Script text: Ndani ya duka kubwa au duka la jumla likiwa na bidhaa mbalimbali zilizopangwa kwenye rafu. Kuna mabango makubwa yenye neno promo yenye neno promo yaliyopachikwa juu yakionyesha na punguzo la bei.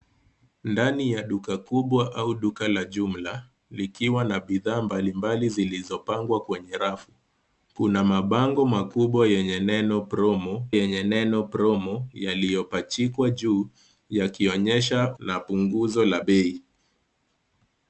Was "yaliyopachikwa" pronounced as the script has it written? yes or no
yes